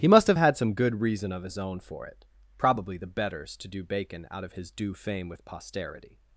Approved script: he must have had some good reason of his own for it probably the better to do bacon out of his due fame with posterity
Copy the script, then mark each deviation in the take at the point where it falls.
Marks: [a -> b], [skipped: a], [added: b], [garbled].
he must have had some good reason of his own for it probably the [better -> betters] to do bacon out of his due fame with posterity